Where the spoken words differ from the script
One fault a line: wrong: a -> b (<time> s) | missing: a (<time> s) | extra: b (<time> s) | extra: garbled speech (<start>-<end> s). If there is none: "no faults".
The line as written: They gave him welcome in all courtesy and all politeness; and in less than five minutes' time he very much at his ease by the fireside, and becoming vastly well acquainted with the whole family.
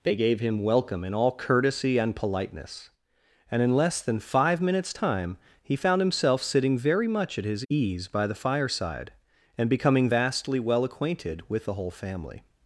missing: all (2.1 s)
extra: found himself sitting (5.8 s)